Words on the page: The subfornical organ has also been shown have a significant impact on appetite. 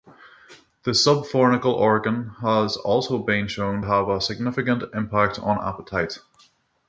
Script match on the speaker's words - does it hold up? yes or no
yes